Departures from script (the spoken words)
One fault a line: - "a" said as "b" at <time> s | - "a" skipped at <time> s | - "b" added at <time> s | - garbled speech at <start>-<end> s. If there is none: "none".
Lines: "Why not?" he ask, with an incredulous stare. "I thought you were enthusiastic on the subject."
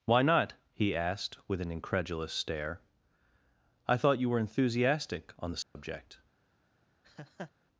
- "ask" said as "asked" at 0.9 s